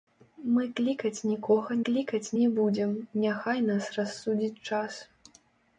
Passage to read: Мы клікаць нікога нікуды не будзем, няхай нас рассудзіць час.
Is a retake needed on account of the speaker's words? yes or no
yes